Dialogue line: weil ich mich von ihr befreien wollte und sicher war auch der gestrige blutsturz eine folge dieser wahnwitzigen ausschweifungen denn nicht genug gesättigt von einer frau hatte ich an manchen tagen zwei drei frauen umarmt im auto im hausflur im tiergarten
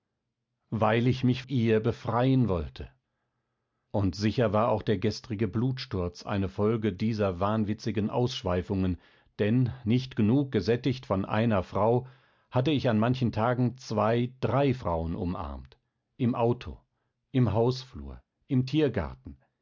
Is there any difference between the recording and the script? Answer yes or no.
yes